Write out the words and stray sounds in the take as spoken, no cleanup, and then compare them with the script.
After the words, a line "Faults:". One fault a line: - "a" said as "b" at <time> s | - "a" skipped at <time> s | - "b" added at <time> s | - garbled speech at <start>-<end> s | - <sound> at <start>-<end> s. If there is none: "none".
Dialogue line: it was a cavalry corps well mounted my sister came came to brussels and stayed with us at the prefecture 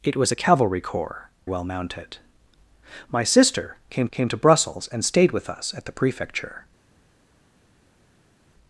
it was a cavalry corps well mounted my sister came came to brussels and stayed with us at the prefecture
Faults:
none